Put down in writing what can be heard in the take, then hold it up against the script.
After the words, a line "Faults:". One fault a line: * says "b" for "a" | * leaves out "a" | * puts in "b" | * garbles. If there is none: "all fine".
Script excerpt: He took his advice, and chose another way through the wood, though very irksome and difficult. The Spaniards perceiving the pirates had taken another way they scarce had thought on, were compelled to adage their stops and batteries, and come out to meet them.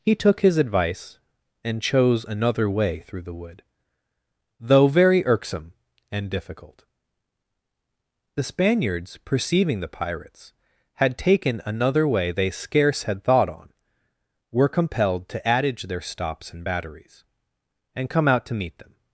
He took his advice, and chose another way through the wood, though very irksome and difficult. The Spaniards perceiving the pirates had taken another way they scarce had thought on, were compelled to adage their stops and batteries, and come out to meet them.
Faults:
all fine